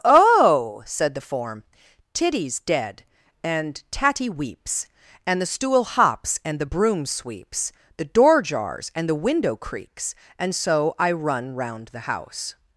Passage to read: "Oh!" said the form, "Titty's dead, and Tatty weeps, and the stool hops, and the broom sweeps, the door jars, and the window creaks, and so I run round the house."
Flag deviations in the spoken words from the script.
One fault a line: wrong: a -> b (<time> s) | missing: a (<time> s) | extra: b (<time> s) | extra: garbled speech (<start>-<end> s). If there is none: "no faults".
no faults